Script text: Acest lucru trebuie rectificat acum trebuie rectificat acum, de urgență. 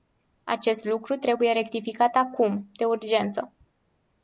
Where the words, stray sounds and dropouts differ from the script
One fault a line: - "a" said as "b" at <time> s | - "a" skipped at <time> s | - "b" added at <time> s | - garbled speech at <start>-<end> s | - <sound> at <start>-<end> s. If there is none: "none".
- "trebuie rectificat acum" skipped at 2.7 s